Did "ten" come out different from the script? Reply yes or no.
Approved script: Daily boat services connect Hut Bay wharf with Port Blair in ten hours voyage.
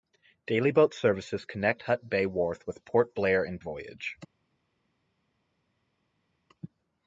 yes